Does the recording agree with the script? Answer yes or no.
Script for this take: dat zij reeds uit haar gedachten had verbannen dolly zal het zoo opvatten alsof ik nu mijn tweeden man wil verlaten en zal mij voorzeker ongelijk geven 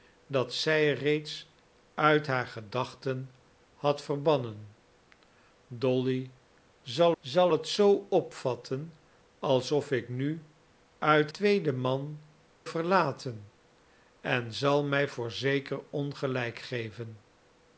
no